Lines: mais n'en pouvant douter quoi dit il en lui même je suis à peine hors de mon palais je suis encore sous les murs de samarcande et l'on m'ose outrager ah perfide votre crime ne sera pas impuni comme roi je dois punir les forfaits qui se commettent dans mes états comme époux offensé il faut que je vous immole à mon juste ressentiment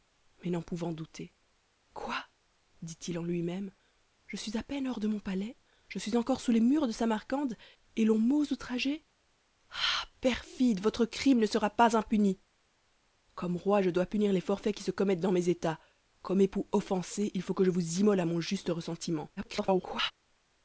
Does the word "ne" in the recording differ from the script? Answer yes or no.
no